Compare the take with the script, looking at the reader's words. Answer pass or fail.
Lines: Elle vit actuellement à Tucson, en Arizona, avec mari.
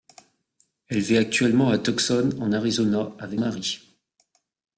pass